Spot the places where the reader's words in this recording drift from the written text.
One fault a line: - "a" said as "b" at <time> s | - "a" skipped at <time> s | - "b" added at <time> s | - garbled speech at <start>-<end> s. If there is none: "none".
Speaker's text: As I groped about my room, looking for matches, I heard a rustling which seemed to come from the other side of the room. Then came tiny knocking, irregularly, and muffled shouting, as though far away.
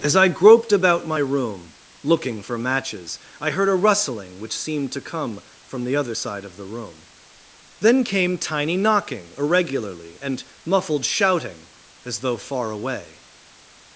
none